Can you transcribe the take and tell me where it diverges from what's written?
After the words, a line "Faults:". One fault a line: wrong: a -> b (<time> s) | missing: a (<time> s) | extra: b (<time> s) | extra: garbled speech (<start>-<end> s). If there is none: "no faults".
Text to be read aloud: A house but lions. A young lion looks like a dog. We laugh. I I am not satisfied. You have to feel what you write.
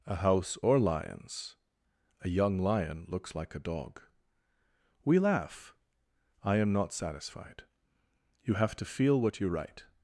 A house or lions. A young lion looks like a dog. We laugh. I am not satisfied. You have to feel what you write.
Faults:
wrong: but -> or (0.6 s)
missing: I (6.5 s)